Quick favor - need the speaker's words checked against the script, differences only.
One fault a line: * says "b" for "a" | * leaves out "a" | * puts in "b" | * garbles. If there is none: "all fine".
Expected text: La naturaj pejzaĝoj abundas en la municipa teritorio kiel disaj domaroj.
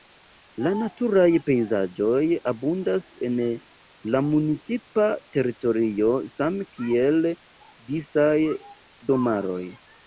* puts in "same"